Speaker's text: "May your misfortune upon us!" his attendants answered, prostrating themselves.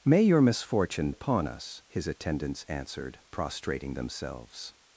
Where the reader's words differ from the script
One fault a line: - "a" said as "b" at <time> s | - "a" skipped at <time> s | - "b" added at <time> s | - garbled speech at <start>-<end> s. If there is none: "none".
none